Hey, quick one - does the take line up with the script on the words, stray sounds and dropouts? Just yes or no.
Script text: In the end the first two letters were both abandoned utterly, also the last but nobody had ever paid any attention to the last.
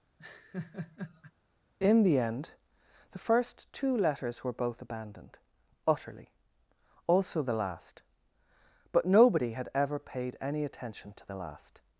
no